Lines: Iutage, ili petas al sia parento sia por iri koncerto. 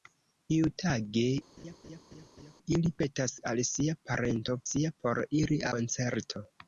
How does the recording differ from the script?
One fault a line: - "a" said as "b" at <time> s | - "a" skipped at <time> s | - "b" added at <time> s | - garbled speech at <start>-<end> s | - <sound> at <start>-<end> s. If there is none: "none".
- laugh at 1.6-2.6 s